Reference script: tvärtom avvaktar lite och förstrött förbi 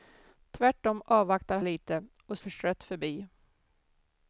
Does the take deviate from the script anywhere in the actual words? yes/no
no